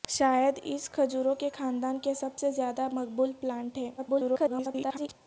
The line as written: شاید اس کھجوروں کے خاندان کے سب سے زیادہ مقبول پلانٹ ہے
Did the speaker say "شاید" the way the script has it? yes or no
yes